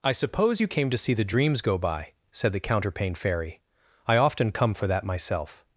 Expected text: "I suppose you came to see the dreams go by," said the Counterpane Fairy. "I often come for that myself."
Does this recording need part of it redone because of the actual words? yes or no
no